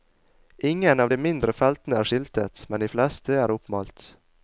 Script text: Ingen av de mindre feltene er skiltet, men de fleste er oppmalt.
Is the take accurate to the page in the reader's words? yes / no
yes